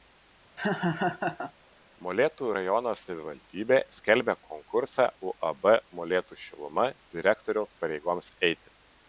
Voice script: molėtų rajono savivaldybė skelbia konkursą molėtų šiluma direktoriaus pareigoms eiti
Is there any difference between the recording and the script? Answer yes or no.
yes